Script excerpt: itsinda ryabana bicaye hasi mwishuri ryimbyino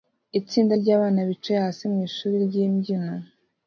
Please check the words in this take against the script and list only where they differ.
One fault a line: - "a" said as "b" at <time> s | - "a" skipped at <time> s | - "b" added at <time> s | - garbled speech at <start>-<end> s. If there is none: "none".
none